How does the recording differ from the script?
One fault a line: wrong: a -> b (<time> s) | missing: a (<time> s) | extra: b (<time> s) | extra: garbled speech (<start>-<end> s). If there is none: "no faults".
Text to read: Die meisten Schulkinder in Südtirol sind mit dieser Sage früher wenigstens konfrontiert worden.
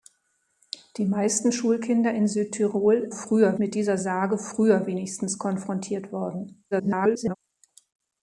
wrong: sind -> früher (3.1 s)
extra: garbled speech (6.7-7.4 s)